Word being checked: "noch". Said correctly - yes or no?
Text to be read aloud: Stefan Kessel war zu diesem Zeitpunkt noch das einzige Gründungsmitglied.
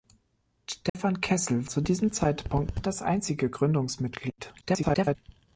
no